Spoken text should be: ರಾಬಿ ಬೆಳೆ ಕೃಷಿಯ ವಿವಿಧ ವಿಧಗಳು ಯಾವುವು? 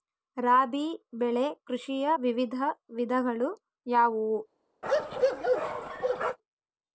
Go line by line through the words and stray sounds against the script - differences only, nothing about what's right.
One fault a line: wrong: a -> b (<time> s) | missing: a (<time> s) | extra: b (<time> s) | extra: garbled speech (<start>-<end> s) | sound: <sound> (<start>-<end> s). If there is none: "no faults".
sound: bark (4.8-6.4 s)